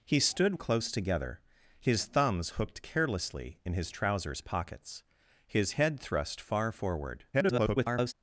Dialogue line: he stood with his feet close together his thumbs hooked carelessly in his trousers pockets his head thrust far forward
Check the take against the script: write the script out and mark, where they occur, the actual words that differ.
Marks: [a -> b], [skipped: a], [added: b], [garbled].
he stood [skipped: with his feet] close together his thumbs hooked carelessly in his trousers pockets his head thrust far forward [garbled]